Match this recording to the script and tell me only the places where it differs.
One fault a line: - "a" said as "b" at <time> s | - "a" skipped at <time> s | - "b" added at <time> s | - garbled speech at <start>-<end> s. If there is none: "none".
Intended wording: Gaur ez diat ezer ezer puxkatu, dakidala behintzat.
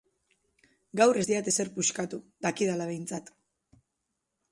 - "ezer" skipped at 1.7 s